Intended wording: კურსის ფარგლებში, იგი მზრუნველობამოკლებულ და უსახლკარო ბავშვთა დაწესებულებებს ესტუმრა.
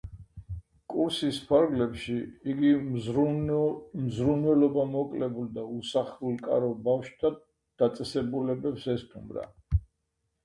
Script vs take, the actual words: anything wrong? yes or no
no